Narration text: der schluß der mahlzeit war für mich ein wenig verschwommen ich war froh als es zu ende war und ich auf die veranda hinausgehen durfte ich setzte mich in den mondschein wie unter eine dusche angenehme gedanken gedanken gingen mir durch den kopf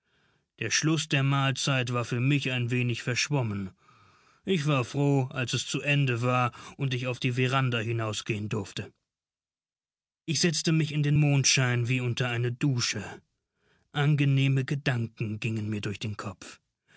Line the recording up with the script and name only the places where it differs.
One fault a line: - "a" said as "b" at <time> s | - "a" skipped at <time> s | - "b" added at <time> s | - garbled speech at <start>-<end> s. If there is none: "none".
- "gedanken" skipped at 15.4 s